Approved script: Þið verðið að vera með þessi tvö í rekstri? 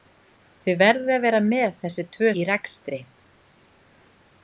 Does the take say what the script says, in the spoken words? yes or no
yes